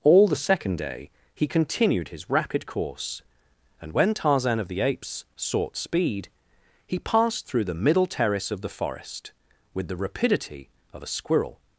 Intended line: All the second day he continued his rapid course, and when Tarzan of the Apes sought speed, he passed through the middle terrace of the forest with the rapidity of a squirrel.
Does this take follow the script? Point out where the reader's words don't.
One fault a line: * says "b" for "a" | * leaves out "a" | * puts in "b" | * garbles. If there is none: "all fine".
all fine